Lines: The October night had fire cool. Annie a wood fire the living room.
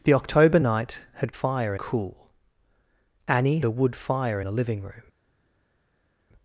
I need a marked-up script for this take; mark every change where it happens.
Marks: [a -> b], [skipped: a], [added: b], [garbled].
The October night had fire cool. Annie a wood fire the living room.